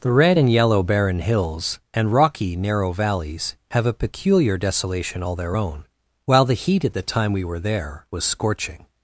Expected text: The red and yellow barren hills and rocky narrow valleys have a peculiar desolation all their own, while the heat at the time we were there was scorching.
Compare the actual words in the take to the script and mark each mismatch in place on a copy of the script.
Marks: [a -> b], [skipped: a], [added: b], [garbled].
The red and yellow barren hills and rocky narrow valleys have a peculiar desolation all their own, while the heat at the time we were there was scorching.